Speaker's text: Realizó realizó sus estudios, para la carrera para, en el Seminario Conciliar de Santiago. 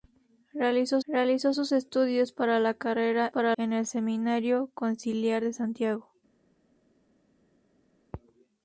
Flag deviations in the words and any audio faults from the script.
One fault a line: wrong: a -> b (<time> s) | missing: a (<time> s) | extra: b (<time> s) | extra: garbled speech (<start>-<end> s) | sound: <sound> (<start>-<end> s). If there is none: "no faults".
no faults